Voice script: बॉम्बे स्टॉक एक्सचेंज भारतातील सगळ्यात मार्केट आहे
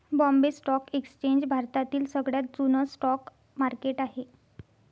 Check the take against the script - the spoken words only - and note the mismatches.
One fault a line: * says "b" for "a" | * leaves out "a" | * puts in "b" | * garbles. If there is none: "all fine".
* puts in "जुन स्टॉक"